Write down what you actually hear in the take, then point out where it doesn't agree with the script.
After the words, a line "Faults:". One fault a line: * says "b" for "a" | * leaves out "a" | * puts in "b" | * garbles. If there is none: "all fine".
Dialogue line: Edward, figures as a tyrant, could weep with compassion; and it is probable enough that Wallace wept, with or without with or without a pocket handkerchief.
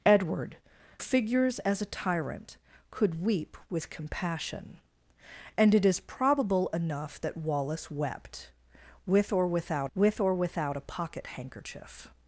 Edward, figures as a tyrant, could weep with compassion; and it is probable enough that Wallace wept, with or without with or without a pocket handkerchief.
Faults:
all fine